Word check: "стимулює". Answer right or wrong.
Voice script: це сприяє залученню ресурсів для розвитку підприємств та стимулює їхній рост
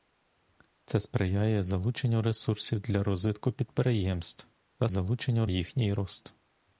wrong